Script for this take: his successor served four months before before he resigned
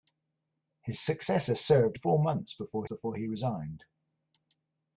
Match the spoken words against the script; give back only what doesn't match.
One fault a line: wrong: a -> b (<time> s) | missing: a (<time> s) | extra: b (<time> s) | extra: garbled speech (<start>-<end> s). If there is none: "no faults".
no faults